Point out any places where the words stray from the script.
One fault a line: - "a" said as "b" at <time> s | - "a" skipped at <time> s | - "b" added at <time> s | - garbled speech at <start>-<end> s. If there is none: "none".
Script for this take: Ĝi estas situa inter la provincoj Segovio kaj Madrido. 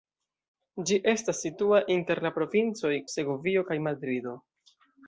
none